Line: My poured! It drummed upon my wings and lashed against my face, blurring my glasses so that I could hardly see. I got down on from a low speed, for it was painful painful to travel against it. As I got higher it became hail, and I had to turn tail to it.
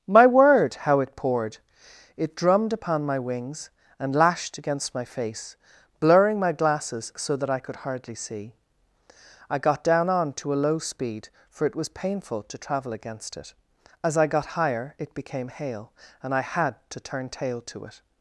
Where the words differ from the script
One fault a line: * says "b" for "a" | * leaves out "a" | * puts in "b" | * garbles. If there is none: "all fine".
* puts in "word how it"
* says "to" for "from"
* leaves out "painful"